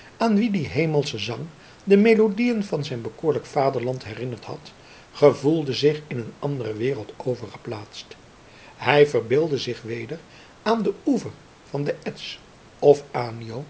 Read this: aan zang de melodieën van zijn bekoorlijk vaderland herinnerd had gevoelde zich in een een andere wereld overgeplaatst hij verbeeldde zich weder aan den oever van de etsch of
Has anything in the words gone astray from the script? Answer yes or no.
yes